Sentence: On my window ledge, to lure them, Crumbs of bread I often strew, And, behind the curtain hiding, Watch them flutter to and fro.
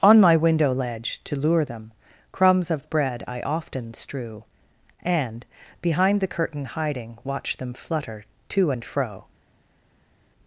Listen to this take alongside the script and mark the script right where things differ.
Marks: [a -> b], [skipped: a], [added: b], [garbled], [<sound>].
On my window ledge, to lure them, Crumbs of bread I often strew, And, behind the curtain hiding, Watch them flutter to and fro.